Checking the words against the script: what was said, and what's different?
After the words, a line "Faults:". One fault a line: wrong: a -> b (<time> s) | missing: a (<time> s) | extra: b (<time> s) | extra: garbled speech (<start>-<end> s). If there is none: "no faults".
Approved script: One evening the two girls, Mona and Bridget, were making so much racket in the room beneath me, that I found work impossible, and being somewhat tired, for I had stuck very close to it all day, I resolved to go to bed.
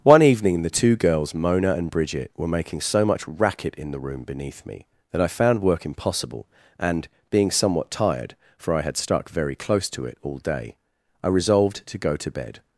One evening the two girls, Mona and Bridget, were making so much racket in the room beneath me, that I found work impossible, and being somewhat tired, for I had stuck very close to it all day, I resolved to go to bed.
Faults:
no faults